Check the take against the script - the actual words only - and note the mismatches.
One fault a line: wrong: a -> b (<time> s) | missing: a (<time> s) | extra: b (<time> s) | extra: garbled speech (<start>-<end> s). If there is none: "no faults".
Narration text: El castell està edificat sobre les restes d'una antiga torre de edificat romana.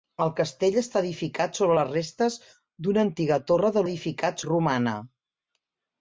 no faults